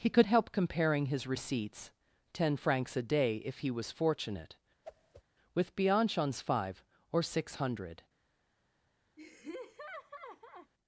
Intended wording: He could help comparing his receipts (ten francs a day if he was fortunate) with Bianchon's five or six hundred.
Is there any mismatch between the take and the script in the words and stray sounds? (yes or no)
yes